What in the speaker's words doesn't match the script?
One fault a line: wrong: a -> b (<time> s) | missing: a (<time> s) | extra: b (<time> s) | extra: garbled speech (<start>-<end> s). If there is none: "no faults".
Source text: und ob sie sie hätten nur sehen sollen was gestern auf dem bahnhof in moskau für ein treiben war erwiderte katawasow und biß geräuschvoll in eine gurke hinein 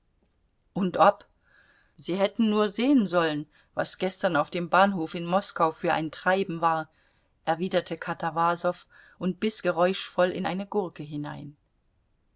missing: sie (2.1 s)